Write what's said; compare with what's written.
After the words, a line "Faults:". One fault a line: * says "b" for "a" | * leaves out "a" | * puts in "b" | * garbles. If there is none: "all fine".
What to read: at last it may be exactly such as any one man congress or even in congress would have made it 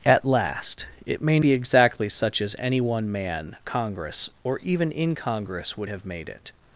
at last it may be exactly such as any one man congress or even in congress would have made it
Faults:
all fine